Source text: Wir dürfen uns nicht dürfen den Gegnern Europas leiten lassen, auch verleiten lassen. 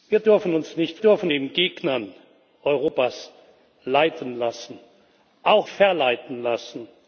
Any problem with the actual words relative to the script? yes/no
no